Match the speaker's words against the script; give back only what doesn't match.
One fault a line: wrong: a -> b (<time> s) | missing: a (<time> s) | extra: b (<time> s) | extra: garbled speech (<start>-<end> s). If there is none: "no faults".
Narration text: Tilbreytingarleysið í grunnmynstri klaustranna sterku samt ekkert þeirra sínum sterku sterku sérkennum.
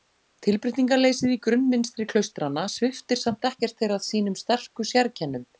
wrong: sterku -> sviptir (2.8 s)
missing: sterku (4.9 s)